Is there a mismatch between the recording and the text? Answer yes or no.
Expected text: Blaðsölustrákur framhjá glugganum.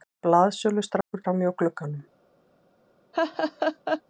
no